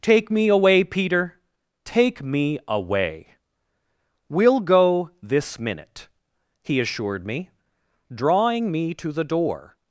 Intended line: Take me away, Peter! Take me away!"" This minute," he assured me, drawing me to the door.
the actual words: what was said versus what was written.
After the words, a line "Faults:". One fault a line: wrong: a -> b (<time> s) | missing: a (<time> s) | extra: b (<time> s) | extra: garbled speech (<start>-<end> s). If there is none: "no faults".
Take me away, Peter! Take me away!"" We'll go this minute," he assured me, drawing me to the door.
Faults:
extra: We'll go (4.3 s)